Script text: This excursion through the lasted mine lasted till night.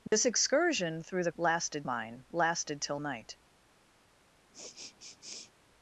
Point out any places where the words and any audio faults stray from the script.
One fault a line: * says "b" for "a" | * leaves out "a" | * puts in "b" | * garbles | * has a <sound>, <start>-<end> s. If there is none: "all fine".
* has a dropout, 0.1-0.1 s
* has a sniff, 4.5-5.5 s